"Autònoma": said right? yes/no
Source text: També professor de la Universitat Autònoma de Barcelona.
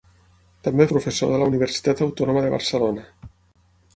yes